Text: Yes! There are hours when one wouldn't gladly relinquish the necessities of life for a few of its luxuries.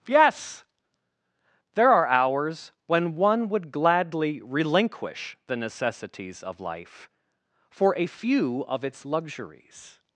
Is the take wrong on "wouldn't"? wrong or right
wrong